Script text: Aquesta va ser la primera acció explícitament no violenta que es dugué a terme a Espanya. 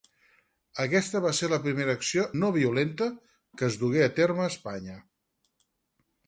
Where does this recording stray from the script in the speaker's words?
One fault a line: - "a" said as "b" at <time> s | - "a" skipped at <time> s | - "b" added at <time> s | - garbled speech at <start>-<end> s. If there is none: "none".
- "explícitament" skipped at 2.2 s